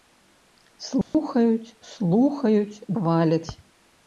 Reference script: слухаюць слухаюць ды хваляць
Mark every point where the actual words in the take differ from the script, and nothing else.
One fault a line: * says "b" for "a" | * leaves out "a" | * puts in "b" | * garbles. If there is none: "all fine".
* leaves out "ды"